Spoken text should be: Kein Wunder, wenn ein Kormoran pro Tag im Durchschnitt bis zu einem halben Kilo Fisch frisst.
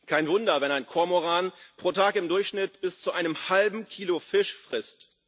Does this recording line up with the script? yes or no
yes